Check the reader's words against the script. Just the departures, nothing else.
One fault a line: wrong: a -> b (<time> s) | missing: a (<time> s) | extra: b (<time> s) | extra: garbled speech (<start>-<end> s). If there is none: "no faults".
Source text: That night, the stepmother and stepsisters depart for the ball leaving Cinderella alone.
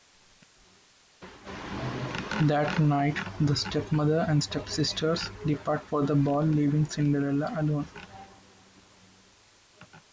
no faults